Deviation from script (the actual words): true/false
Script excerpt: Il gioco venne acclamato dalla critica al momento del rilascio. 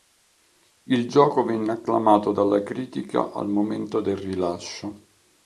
false